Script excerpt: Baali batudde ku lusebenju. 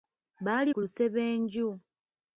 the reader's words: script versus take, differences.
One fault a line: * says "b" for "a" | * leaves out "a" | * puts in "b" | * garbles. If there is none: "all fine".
* leaves out "batudde"